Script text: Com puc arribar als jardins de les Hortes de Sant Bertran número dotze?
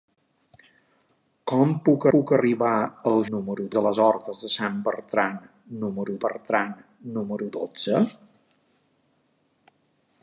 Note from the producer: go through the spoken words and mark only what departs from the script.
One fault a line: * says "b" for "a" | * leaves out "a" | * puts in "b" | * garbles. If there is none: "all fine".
* puts in "puc"
* says "número" for "jardins"
* puts in "Bertran número"